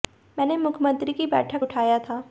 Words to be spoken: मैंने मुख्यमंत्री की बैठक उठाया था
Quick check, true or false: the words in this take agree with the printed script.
true